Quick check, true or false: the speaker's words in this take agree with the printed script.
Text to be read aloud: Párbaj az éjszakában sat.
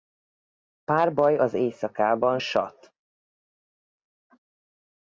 true